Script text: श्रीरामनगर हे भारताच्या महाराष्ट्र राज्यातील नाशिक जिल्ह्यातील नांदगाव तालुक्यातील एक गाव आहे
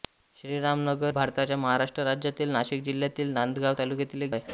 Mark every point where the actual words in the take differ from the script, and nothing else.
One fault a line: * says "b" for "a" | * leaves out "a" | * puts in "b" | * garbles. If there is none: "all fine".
* leaves out "हे"
* leaves out "गाव"